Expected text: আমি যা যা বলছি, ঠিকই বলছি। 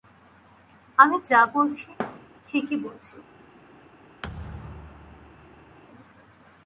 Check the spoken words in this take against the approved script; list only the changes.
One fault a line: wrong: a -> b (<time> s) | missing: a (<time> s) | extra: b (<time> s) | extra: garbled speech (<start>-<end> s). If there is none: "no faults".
missing: যা (1.4 s)